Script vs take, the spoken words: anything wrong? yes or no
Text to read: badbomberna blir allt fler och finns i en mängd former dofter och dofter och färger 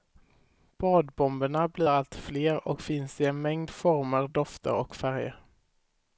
yes